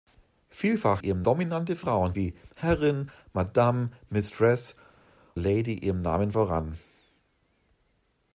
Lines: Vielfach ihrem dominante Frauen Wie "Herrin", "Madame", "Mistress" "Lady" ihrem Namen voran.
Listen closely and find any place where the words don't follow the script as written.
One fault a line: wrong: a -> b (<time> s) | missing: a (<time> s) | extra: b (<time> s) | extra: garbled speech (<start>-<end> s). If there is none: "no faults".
no faults